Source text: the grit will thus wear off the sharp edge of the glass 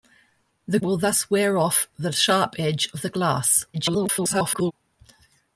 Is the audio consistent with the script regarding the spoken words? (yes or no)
no